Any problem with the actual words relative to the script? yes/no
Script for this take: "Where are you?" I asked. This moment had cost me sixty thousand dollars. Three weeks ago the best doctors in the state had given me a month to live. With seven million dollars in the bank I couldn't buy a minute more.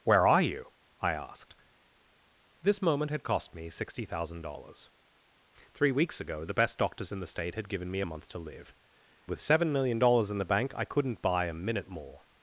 no